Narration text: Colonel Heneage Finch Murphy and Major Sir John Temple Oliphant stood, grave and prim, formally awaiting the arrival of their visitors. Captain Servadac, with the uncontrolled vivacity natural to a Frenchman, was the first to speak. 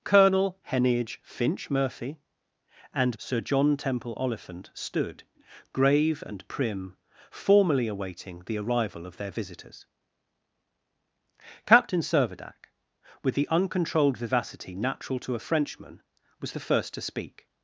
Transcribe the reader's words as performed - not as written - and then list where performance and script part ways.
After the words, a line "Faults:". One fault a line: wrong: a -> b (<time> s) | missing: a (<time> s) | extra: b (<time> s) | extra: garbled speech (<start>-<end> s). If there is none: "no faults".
Colonel Heneage Finch Murphy and Sir John Temple Oliphant stood, grave and prim, formally awaiting the arrival of their visitors. Captain Servadac, with the uncontrolled vivacity natural to a Frenchman, was the first to speak.
Faults:
missing: Major (3.2 s)